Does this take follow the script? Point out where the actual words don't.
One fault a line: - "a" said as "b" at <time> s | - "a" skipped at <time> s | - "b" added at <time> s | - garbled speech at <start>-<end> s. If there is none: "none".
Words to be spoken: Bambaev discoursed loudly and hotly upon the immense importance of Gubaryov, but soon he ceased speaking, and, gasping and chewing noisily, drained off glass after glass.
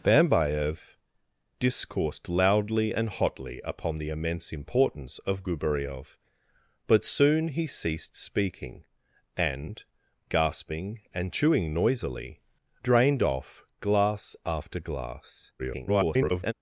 - garbled speech at 15.6-16.5 s